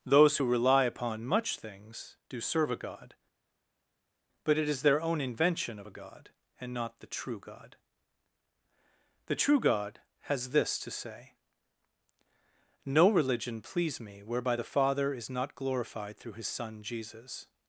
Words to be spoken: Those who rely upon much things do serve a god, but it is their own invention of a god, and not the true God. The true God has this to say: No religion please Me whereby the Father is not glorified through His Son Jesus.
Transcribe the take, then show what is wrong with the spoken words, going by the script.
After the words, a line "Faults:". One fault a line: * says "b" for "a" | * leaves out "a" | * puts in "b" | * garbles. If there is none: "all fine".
Those who rely upon much things do serve a god, but it is their own invention of a god, and not the true God. The true God has this to say: No religion please Me whereby the Father is not glorified through His Son Jesus.
Faults:
all fine